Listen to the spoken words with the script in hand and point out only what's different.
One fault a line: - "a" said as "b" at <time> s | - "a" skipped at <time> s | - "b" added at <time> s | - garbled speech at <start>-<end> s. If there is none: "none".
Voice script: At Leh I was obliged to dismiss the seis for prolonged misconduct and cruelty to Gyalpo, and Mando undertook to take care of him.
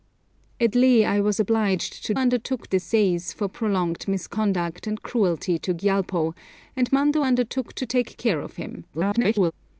- "dismiss" said as "undertook" at 2.1 s
- garbled speech at 8.9-9.5 s